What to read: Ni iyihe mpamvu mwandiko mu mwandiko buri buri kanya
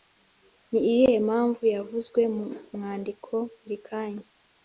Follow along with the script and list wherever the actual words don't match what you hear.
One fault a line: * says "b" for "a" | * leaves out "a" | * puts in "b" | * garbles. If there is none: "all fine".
* says "yavuzwe" for "mwandiko"
* leaves out "buri"